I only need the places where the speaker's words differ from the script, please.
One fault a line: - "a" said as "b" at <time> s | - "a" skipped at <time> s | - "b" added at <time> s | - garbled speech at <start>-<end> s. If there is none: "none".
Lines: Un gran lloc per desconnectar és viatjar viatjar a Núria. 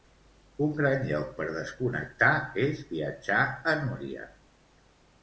- "viatjar" skipped at 3.4 s